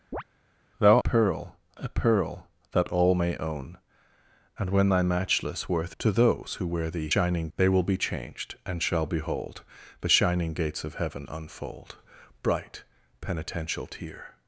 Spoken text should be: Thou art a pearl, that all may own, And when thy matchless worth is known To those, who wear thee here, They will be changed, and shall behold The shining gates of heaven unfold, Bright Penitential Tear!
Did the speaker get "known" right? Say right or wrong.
wrong